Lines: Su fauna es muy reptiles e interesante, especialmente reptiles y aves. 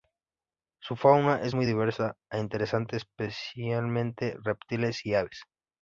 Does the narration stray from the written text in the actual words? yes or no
yes